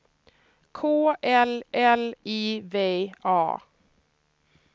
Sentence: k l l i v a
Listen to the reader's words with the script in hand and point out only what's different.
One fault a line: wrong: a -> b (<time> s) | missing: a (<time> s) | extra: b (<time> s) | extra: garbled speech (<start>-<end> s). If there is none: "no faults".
no faults